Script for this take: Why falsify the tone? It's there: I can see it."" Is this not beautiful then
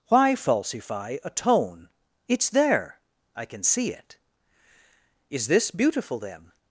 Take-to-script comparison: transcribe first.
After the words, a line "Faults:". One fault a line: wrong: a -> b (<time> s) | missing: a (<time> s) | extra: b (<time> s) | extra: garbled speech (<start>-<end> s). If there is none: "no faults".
Why falsify a tone? It's there: I can see it."" Is this beautiful then
Faults:
wrong: the -> a (1.2 s)
missing: not (5.7 s)